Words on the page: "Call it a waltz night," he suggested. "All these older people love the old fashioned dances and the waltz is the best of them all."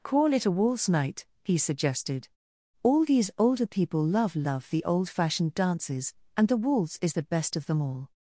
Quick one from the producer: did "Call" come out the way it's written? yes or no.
yes